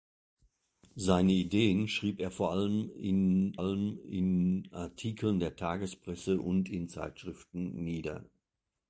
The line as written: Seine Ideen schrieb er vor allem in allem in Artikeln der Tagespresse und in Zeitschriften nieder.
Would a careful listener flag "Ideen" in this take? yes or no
no